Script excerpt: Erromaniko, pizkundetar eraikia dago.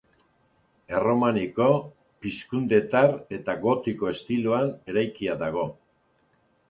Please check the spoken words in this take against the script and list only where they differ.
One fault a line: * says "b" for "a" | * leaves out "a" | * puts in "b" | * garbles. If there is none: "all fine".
* puts in "eta gotiko estiloan"